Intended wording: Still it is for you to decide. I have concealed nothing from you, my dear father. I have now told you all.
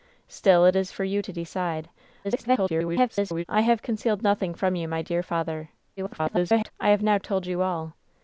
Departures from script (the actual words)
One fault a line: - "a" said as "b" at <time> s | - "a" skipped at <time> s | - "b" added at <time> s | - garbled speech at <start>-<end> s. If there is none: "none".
- garbled speech at 2.2-3.4 s
- garbled speech at 6.0-6.7 s